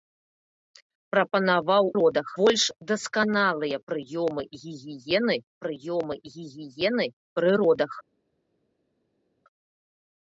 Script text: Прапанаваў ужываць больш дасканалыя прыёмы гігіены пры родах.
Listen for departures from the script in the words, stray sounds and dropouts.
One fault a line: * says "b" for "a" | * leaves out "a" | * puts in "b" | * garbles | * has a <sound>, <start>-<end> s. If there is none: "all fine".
* says "родах" for "ужываць"
* puts in "прыёмы гігіены"